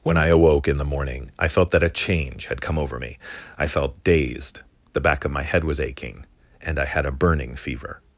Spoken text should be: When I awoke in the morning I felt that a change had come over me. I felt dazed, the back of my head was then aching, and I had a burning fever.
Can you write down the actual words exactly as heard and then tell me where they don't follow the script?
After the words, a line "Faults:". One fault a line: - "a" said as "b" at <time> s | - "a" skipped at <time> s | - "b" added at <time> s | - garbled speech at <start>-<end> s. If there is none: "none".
When I awoke in the morning I felt that a change had come over me. I felt dazed, the back of my head was aching, and I had a burning fever.
Faults:
- "then" skipped at 5.8 s